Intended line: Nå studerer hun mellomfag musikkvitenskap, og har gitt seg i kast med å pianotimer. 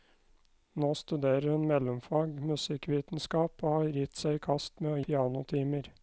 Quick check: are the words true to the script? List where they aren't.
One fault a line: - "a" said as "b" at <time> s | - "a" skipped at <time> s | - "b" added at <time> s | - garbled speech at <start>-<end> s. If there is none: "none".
none